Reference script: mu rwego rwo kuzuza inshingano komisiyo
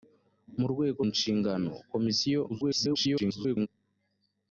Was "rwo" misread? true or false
true